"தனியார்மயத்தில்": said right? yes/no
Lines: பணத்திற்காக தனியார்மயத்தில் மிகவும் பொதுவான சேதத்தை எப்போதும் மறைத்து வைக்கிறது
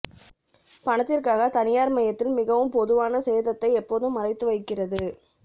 yes